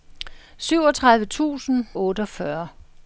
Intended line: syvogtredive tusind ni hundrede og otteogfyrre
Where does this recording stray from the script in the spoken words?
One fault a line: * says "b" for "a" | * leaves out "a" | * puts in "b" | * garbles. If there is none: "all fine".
* leaves out "ni hundrede og"